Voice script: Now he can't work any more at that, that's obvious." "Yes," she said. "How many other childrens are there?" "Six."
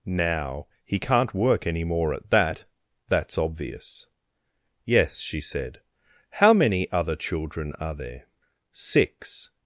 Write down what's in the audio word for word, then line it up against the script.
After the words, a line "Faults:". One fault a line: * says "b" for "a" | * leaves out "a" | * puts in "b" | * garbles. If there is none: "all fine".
Now he can't work any more at that, that's obvious." "Yes," she said. "How many other children are there?" "Six."
Faults:
* says "children" for "childrens"